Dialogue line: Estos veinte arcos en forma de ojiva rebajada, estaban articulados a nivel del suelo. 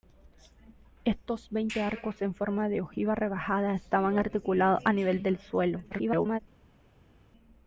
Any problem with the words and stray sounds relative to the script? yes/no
yes